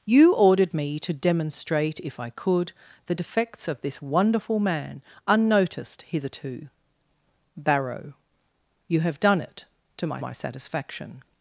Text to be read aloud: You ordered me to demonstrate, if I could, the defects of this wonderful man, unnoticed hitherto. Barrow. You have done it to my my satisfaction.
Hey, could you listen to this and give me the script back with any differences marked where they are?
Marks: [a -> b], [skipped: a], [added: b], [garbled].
You ordered me to demonstrate, if I could, the defects of this wonderful man, unnoticed hitherto. Barrow. You have done it to my my satisfaction.